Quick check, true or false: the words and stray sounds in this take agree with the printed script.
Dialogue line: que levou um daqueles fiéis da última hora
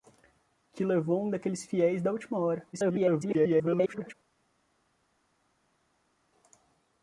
false